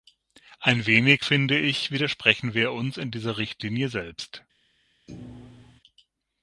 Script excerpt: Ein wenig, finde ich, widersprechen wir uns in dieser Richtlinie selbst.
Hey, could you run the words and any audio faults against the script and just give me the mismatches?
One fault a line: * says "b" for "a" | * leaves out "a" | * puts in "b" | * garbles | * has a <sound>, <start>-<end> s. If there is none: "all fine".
* has a thud, 5.1-5.8 s